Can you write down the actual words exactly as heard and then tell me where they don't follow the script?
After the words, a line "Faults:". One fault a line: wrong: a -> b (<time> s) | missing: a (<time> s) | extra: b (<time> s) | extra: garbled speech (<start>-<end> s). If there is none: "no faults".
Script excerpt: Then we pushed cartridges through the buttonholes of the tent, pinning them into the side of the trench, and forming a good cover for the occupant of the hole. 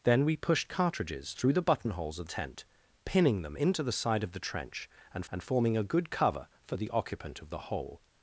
Then we pushed cartridges through the buttonholes of tent, pinning them into the side of the trench, and and forming a good cover for the occupant of the hole.
Faults:
missing: the (2.3 s)
extra: and (5.3 s)